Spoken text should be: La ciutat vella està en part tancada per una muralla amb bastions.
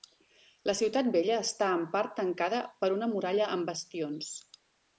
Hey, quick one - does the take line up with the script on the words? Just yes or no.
yes